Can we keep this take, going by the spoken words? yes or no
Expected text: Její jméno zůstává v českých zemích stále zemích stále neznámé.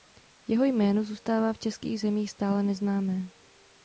no